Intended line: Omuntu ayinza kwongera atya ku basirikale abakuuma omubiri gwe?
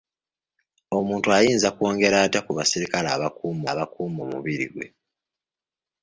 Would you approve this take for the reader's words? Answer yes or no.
no